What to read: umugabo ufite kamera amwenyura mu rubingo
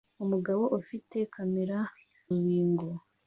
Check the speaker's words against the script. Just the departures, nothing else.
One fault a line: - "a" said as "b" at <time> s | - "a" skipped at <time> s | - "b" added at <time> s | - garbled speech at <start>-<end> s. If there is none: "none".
- "amwenyura mu" skipped at 1.8 s